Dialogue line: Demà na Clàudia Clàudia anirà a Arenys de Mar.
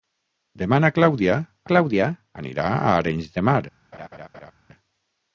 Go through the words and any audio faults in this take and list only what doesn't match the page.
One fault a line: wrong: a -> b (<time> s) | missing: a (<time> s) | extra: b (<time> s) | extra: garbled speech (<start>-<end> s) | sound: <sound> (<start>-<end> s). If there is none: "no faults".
sound: laugh (3.9-4.5 s)